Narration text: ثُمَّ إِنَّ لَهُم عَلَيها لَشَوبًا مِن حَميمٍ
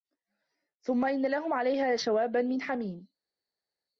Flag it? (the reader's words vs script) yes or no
no